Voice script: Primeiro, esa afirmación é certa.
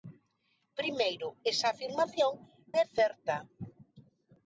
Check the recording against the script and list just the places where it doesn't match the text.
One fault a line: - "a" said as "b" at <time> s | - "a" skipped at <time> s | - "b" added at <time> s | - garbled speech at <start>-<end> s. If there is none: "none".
none